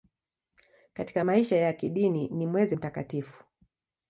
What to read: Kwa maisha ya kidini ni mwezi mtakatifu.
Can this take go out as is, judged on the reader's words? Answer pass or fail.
fail